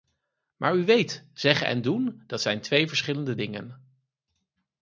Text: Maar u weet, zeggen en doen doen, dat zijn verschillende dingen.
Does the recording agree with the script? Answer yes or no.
no